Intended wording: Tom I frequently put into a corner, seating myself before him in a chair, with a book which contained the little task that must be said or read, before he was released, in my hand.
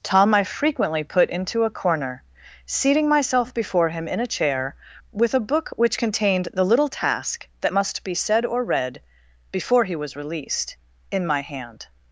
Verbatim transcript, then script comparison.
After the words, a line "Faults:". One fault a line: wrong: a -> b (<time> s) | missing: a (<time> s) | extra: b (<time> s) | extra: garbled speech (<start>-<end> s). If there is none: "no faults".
Tom I frequently put into a corner, seating myself before him in a chair, with a book which contained the little task that must be said or read, before he was released, in my hand.
Faults:
no faults